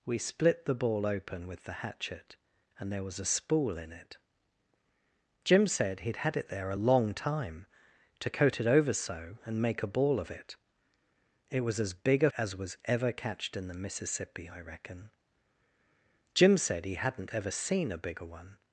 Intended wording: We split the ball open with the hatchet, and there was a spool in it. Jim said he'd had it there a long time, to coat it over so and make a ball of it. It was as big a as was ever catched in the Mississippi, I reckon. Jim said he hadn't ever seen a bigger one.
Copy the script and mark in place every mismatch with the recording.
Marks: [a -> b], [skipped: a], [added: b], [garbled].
We split the ball open with the hatchet, and there was a spool in it. Jim said he'd had it there a long time, to coat it over so and make a ball of it. It was as big a as was ever catched in the Mississippi, I reckon. Jim said he hadn't ever seen a bigger one.